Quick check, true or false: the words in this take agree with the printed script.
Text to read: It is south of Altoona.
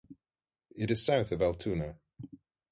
true